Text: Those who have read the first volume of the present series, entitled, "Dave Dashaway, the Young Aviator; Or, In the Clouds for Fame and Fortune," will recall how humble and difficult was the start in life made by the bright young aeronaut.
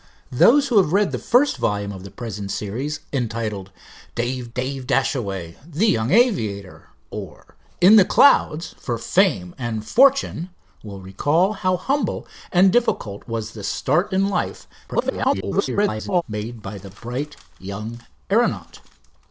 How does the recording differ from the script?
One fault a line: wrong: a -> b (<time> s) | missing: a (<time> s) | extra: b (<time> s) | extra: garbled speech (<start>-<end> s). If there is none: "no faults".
extra: dave (4.5 s)
extra: garbled speech (14.9-16.2 s)